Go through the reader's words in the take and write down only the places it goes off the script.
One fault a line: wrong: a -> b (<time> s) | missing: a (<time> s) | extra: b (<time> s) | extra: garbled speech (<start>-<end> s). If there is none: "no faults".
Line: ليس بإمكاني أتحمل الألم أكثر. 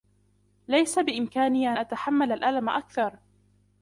no faults